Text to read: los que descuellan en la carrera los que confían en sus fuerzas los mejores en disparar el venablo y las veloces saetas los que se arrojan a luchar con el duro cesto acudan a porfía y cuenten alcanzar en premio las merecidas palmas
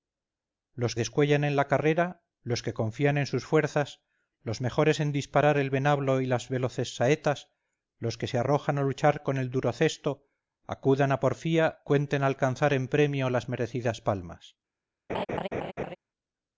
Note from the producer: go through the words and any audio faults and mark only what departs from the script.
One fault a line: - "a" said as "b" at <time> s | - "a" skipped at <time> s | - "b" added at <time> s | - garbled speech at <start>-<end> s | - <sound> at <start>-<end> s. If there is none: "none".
- "que" skipped at 0.9 s
- "y" skipped at 11.8 s
- laugh at 15.1-16.0 s